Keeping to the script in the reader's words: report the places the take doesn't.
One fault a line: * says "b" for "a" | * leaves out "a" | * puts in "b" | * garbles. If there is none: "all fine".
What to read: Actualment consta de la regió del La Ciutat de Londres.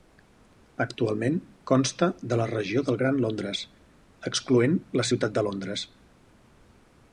* puts in "Gran Londres excloent"